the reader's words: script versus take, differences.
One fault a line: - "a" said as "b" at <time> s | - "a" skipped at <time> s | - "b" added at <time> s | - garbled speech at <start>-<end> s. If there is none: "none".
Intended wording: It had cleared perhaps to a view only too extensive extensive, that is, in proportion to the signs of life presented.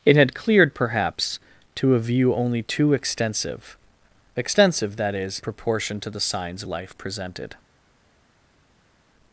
- "in" skipped at 5.4 s
- "of" skipped at 6.6 s